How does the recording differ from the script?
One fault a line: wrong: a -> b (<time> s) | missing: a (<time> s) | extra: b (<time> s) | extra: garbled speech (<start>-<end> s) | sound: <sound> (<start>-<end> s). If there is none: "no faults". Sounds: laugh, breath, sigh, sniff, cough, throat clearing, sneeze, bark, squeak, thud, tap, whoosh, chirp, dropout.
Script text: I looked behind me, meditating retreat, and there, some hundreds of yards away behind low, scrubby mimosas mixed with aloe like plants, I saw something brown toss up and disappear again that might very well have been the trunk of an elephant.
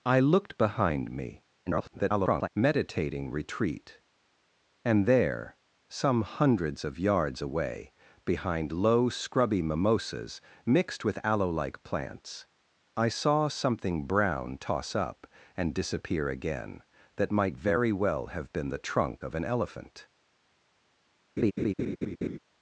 extra: garbled speech (1.7-2.5 s)
sound: laugh (21.4-22.4 s)